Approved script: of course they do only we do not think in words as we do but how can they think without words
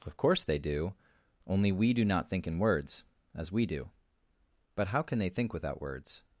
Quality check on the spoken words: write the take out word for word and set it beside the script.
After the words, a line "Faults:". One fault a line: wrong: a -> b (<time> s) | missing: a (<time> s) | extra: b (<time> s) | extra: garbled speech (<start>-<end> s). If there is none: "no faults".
of course they do only we do not think in words as we do but how can they think without words
Faults:
no faults